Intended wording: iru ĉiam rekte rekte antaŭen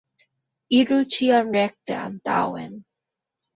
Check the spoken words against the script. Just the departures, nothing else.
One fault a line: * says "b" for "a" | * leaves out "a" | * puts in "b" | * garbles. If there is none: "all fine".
* leaves out "rekte"